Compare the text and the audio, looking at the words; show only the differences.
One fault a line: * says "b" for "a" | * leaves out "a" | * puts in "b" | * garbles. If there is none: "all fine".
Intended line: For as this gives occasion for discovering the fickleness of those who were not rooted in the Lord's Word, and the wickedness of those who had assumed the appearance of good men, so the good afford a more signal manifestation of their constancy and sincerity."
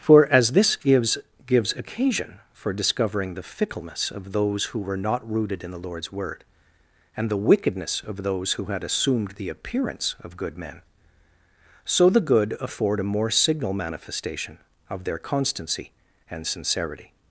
* puts in "gives"